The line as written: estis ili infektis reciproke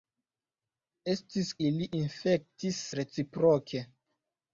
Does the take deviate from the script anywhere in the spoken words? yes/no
no